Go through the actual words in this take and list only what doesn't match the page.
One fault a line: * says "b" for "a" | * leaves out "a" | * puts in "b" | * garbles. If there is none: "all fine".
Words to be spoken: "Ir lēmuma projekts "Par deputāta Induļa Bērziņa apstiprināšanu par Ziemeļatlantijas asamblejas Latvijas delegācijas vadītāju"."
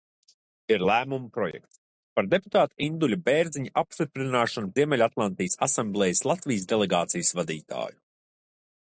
* leaves out "par"